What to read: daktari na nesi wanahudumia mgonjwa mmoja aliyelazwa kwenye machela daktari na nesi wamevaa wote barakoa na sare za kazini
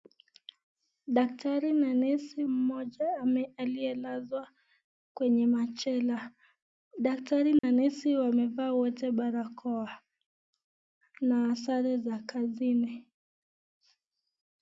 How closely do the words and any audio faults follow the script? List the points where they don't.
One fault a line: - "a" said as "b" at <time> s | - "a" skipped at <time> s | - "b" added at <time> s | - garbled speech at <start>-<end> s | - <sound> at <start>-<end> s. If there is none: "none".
- "wanahudumia mgonjwa" skipped at 2.4 s
- dropout at 7.6-7.6 s